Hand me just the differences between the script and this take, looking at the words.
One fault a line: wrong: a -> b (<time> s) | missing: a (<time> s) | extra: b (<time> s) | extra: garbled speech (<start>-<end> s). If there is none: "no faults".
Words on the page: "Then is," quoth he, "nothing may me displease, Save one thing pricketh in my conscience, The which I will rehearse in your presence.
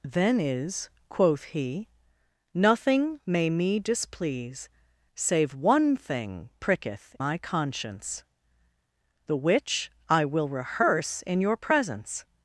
missing: in (7.2 s)